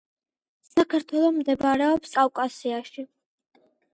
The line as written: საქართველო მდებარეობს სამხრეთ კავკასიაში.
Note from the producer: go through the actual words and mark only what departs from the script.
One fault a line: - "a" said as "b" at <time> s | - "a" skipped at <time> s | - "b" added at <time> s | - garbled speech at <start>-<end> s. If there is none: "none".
- "სამხრეთ" skipped at 2.2 s